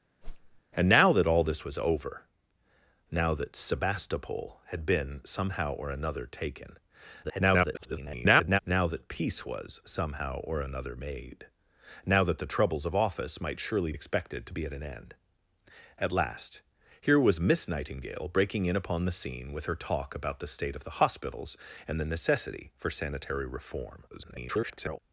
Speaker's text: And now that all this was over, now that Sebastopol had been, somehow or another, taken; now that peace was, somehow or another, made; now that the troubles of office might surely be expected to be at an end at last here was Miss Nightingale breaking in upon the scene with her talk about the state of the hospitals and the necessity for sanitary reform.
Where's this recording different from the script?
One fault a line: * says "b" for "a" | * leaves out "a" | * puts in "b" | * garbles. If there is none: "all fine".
* garbles
* leaves out "be"
* garbles